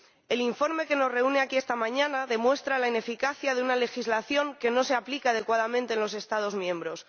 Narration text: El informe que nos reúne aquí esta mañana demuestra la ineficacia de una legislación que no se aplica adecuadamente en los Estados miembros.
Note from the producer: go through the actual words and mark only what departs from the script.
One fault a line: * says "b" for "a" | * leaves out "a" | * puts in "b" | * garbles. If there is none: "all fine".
all fine